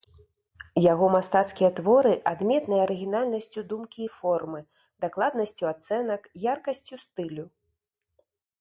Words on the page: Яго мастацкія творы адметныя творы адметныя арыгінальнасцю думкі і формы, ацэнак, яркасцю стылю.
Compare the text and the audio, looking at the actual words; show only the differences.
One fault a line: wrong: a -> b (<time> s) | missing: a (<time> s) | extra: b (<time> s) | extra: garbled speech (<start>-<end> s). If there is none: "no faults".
missing: творы адметныя (2.8 s)
extra: дакладнасцю (5.1 s)